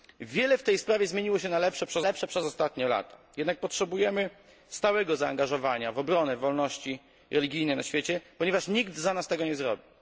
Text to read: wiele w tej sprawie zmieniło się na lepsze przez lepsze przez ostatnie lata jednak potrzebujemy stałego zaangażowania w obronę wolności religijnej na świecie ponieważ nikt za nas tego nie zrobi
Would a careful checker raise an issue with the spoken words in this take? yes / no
no